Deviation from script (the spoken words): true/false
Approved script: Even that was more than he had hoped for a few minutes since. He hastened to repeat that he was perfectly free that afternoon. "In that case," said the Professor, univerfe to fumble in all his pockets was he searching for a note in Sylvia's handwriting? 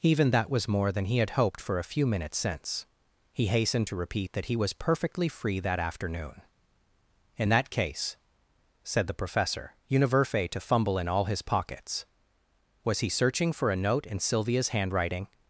false